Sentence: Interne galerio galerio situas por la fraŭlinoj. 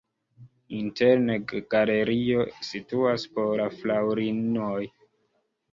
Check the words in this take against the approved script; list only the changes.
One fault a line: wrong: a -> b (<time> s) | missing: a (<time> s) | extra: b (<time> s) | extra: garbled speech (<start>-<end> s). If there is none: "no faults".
missing: galerio (2.5 s)